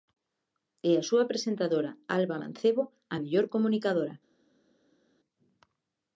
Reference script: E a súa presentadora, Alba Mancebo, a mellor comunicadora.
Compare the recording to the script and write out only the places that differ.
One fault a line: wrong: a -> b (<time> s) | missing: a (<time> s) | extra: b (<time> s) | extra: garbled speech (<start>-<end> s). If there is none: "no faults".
no faults